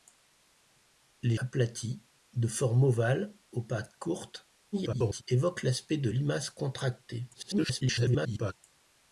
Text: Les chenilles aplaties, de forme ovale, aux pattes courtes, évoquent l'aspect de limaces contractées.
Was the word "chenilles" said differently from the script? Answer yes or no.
yes